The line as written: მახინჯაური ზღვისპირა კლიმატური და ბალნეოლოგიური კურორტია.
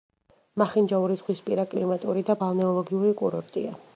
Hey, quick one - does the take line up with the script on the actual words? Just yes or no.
yes